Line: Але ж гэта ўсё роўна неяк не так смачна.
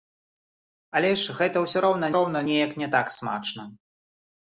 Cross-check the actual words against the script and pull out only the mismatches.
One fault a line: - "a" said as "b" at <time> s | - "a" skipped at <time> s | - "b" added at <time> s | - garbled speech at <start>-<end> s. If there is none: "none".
- "роўна" added at 2.2 s